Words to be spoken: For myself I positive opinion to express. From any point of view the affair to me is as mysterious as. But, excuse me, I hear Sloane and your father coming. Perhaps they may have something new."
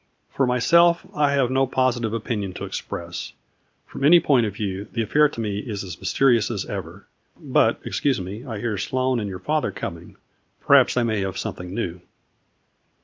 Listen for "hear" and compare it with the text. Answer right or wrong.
right